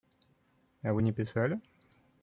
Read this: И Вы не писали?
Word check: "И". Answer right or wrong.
wrong